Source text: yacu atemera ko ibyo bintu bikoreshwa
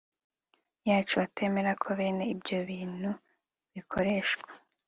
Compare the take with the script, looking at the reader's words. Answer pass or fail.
fail